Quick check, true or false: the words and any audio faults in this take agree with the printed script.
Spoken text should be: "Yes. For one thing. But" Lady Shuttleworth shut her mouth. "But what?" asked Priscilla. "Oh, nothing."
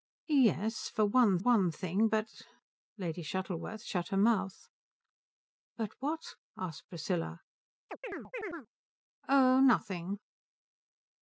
false